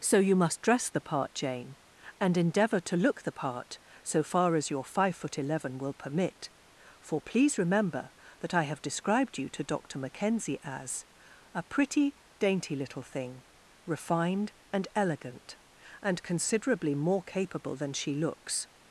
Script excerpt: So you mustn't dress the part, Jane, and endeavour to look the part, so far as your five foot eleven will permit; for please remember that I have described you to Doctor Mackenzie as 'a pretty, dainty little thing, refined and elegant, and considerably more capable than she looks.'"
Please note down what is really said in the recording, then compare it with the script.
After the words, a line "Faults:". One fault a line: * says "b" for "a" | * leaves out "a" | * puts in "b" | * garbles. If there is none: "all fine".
So you must dress the part, Jane, and endeavour to look the part, so far as your five foot eleven will permit; for please remember that I have described you to Doctor Mackenzie as 'a pretty, dainty little thing, refined and elegant, and considerably more capable than she looks.'"
Faults:
* says "must" for "mustn't"